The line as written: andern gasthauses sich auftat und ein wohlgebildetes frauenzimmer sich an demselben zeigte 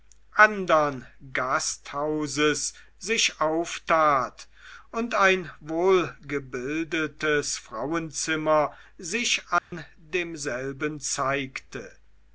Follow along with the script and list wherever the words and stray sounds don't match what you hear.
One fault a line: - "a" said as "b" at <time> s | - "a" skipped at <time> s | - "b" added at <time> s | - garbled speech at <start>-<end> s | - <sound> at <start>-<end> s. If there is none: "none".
- dropout at 9.6-9.7 s